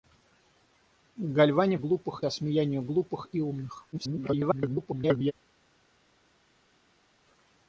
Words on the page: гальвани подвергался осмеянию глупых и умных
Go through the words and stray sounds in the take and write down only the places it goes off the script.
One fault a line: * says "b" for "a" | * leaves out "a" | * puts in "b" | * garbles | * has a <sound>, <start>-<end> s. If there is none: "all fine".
* says "глупых" for "подвергался"
* garbles